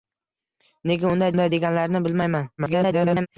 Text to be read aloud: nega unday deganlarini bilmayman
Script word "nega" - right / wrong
right